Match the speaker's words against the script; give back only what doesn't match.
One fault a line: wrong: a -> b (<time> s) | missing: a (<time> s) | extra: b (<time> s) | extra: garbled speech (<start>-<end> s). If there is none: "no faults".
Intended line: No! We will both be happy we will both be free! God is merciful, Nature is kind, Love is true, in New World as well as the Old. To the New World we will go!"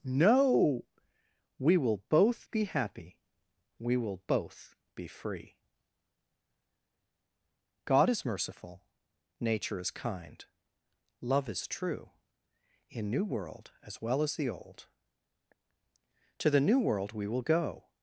no faults